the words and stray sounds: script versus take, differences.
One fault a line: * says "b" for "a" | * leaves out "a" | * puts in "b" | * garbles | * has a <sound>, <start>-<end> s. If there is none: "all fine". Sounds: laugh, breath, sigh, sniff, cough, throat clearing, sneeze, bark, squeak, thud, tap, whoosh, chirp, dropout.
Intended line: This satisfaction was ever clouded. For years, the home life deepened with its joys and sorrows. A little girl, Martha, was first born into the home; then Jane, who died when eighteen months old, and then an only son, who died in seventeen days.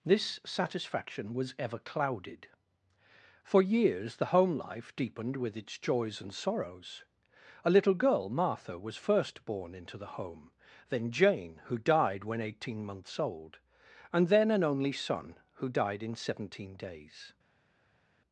all fine